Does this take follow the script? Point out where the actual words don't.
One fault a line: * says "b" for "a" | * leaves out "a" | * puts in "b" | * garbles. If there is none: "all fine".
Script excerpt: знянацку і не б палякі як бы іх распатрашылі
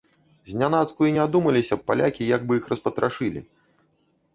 * puts in "адумаліся"